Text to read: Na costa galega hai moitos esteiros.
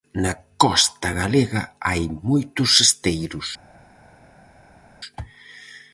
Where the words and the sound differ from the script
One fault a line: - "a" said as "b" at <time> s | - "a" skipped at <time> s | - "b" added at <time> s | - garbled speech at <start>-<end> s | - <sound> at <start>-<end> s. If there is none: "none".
none